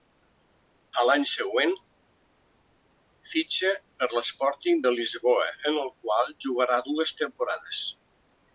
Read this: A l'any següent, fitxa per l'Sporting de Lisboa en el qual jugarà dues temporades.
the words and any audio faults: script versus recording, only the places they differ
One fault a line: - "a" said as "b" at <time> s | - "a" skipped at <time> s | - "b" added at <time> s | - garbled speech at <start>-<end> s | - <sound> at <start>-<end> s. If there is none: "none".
none